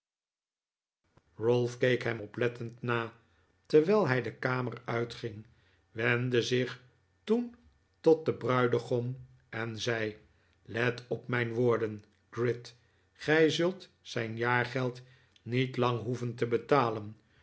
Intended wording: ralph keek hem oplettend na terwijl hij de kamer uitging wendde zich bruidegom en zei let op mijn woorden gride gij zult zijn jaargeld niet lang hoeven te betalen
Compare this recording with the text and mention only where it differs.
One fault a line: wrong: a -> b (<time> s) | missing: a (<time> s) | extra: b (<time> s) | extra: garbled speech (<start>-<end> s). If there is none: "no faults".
extra: toen tot den (7.2 s)